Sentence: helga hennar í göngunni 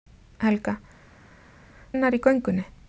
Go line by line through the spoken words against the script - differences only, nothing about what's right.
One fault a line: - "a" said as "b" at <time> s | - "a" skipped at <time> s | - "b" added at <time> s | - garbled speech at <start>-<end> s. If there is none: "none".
none